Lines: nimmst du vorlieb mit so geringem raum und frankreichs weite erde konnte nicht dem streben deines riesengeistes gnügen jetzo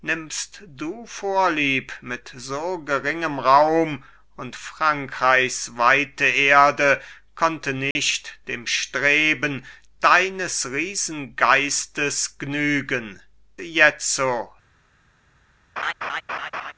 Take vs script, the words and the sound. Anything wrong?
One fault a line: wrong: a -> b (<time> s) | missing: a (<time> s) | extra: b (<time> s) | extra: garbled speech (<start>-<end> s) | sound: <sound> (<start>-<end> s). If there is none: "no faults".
sound: dropout (7.9-8.0 s)
sound: laugh (15.8-16.7 s)